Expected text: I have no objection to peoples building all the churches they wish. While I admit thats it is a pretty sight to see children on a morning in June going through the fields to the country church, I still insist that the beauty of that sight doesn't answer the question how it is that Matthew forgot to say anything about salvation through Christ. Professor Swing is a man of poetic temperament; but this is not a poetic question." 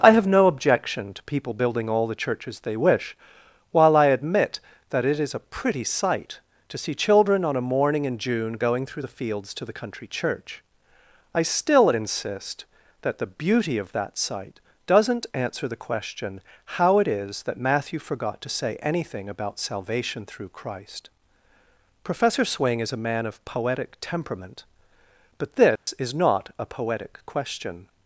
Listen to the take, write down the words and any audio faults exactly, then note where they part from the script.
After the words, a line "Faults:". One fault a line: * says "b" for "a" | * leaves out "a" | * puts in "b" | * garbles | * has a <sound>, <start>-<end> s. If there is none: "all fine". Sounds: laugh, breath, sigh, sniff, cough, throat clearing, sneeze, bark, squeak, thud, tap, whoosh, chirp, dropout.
I have no objection to people building all the churches they wish. While I admit that it is a pretty sight to see children on a morning in June going through the fields to the country church, I still insist that the beauty of that sight doesn't answer the question how it is that Matthew forgot to say anything about salvation through Christ. Professor Swing is a man of poetic temperament; but this is not a poetic question."
Faults:
* says "people" for "peoples"
* says "that" for "thats"
* has a dropout, 25.8-25.9 s